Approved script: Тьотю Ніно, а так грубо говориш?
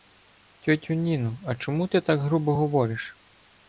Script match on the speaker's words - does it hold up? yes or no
no